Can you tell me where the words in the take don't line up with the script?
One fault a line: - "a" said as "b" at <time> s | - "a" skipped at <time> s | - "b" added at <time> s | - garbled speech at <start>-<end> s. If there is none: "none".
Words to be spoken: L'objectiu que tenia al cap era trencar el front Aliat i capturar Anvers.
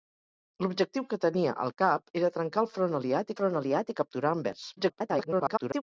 - "front Aliat" added at 3.4 s
- garbled speech at 4.8-5.8 s